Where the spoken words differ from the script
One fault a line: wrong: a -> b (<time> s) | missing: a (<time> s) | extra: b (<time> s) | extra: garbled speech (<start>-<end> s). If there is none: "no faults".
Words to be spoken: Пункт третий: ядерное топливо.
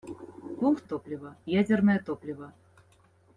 wrong: третий -> топливо (0.8 s)